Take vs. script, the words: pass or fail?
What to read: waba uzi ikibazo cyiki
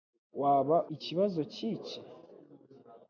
fail